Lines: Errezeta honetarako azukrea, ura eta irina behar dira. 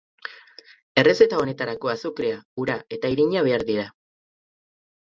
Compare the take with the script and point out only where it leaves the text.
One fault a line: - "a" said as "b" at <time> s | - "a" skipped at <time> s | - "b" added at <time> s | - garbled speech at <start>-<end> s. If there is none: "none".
none